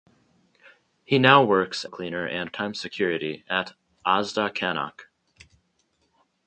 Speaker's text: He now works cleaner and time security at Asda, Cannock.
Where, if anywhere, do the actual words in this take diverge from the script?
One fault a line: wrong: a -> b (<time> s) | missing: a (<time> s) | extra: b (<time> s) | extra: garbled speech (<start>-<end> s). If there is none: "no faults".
no faults